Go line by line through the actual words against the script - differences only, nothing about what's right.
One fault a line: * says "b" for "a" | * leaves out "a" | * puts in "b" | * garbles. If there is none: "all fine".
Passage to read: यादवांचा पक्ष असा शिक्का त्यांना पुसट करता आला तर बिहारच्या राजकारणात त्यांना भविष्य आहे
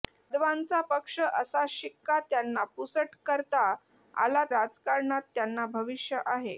* leaves out "तर बिहारच्या"